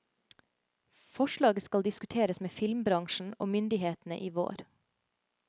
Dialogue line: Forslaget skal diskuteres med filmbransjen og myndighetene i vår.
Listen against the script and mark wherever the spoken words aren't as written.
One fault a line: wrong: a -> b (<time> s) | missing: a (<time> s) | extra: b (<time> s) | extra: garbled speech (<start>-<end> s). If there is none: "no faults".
no faults